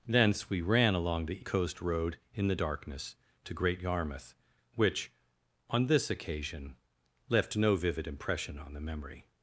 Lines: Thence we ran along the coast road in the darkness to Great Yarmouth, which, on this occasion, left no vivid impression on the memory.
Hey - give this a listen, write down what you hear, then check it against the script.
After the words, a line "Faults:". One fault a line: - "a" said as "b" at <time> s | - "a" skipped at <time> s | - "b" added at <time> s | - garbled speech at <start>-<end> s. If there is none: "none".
Thence we ran along the coast road in the darkness to Great Yarmouth, which, on this occasion, left no vivid impression on the memory.
Faults:
none